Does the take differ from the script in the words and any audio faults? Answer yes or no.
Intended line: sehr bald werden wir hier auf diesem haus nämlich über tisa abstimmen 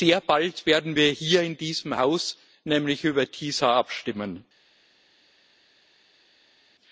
yes